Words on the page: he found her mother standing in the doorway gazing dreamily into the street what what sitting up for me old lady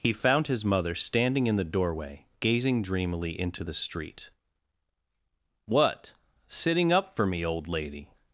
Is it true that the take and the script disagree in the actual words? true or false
true